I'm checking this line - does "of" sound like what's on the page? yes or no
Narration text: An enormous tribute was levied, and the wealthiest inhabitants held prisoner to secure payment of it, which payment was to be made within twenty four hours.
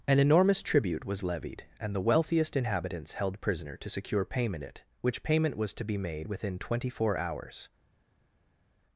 no